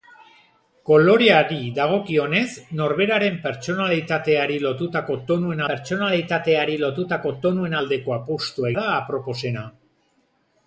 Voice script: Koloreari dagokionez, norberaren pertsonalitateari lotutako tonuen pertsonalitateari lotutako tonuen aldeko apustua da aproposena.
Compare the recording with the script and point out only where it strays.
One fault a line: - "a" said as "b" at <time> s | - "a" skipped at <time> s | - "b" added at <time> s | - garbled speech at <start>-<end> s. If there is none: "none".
none